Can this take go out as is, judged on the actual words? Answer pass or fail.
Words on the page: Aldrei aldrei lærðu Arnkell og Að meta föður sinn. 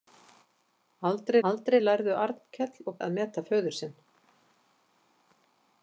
pass